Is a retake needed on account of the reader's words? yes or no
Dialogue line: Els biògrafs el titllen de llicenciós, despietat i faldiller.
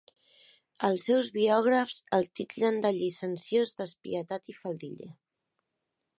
yes